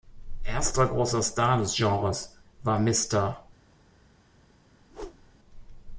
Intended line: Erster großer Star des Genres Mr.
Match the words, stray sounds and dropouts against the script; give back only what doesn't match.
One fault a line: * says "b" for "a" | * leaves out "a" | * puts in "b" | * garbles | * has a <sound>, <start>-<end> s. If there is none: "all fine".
* puts in "war"
* has a whoosh, 4.8-5.4 s